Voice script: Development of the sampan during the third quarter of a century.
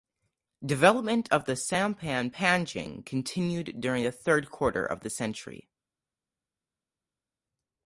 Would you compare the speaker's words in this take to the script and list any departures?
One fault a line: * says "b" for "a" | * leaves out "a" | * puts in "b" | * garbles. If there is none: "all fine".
* puts in "panjang continued"
* says "the" for "a"